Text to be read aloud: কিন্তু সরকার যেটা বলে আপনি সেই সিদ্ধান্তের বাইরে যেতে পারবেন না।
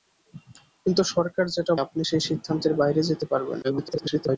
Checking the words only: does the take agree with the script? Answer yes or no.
no